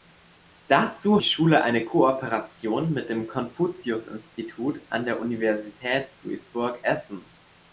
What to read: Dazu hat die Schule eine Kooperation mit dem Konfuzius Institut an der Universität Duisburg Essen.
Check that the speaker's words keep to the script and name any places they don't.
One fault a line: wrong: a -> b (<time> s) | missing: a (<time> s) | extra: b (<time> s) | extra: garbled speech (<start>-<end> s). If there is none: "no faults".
missing: hat (1.2 s)